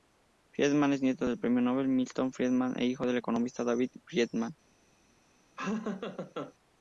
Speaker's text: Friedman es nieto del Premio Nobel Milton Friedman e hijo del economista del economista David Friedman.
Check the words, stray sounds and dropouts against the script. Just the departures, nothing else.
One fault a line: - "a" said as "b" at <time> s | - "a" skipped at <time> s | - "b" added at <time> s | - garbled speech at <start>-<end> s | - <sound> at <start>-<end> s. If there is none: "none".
- "del economista" skipped at 3.6 s
- laugh at 5.6-6.5 s